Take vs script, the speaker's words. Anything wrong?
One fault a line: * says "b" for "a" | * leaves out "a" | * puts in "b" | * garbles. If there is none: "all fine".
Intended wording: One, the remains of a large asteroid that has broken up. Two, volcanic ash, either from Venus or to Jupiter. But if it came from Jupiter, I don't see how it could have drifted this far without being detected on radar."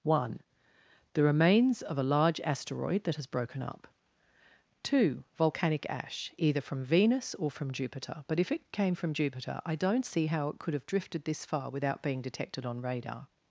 * says "from" for "to"